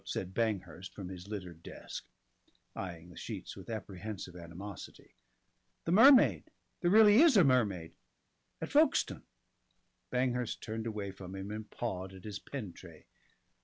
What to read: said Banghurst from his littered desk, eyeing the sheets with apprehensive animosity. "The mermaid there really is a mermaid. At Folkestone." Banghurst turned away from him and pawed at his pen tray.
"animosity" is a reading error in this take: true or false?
false